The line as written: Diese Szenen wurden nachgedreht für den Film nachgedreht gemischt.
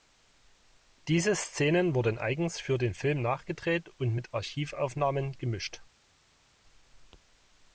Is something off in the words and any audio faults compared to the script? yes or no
yes